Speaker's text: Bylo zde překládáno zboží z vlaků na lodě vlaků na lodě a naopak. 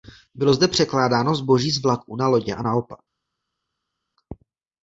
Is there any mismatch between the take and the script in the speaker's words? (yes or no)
yes